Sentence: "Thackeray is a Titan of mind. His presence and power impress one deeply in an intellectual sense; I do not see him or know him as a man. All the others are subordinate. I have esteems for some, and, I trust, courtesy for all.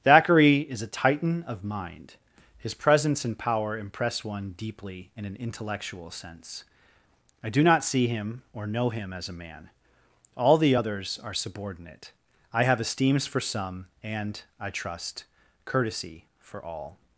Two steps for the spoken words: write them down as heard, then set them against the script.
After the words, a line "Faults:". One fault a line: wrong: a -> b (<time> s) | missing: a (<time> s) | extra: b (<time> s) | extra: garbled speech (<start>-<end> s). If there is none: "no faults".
"Thackeray is a Titan of mind. His presence and power impress one deeply in an intellectual sense; I do not see him or know him as a man. All the others are subordinate. I have esteems for some, and, I trust, courtesy for all.
Faults:
no faults